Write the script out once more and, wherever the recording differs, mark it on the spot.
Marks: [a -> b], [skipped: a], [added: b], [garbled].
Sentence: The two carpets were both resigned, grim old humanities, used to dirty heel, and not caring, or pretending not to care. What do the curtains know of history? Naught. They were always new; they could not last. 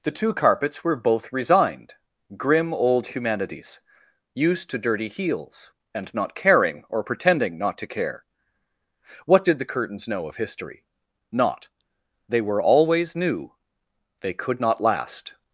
The two carpets were both resigned, grim old humanities, used to dirty [heel, -> heels] and not caring, or pretending not to care. What [do -> did] the curtains know of history? Naught. They were always new; they could not last.